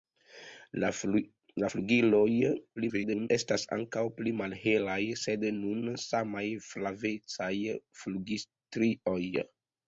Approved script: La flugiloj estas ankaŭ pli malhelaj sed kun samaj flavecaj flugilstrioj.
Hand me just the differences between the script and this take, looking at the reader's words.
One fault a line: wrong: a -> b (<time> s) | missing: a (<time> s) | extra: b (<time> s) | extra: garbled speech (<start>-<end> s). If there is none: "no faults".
extra: garbled speech (2.8-3.3 s)